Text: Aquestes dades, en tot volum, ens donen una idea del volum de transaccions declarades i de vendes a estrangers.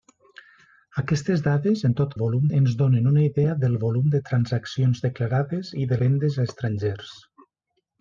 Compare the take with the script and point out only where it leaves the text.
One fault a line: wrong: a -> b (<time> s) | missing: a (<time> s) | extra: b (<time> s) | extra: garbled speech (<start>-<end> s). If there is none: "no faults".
no faults